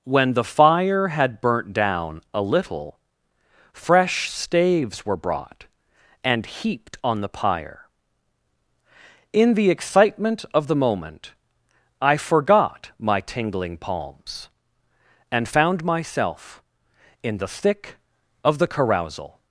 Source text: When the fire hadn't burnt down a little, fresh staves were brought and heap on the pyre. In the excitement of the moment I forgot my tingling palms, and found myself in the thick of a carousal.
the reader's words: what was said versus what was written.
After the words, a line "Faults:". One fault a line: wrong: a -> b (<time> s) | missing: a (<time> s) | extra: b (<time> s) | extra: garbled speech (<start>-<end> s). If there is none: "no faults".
When the fire had burnt down a little, fresh staves were brought and heaped on the pyre. In the excitement of the moment I forgot my tingling palms, and found myself in the thick of the carousal.
Faults:
wrong: hadn't -> had (1.1 s)
wrong: heap -> heaped (6.5 s)
wrong: a -> the (18.6 s)